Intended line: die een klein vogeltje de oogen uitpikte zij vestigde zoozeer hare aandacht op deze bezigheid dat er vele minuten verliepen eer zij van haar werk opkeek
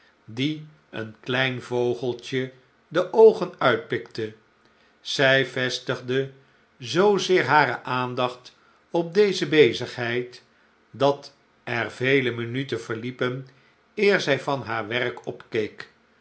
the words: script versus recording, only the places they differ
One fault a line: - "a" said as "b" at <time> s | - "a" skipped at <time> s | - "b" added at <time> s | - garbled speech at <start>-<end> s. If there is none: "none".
none